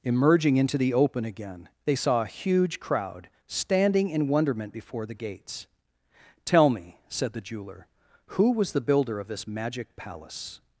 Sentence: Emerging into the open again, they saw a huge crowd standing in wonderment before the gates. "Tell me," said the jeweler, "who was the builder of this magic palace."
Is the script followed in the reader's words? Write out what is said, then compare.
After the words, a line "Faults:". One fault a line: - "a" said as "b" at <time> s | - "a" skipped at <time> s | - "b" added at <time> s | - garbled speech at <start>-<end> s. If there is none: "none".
Emerging into the open again, they saw a huge crowd standing in wonderment before the gates. "Tell me," said the jeweler, "who was the builder of this magic palace."
Faults:
none